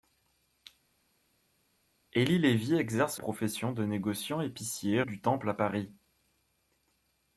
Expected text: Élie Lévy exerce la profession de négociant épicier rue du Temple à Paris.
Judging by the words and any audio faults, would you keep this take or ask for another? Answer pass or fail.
fail